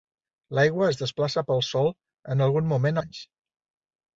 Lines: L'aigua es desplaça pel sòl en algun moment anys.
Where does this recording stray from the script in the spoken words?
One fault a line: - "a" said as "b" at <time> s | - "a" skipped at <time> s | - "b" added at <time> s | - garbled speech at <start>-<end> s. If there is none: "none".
none